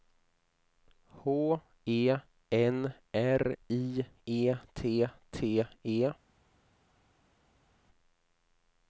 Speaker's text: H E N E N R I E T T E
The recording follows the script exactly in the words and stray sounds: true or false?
false